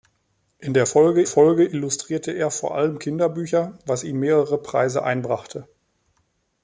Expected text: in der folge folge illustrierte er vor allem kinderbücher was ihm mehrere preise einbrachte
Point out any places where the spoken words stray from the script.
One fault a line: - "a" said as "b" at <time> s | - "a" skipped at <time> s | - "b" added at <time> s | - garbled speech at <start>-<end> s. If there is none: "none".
none